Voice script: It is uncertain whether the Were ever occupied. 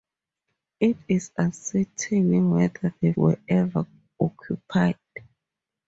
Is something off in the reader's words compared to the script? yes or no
no